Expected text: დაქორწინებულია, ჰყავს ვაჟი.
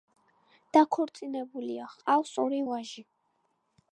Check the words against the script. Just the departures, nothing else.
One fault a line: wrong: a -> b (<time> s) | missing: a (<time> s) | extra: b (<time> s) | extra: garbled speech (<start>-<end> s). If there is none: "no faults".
extra: ორი (2.5 s)